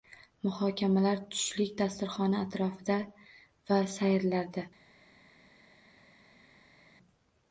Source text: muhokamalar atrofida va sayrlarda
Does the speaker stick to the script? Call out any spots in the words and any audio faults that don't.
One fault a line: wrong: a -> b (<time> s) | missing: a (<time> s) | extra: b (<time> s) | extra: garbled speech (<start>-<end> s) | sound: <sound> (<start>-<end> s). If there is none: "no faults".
extra: tushlik dasturxoni (1.4 s)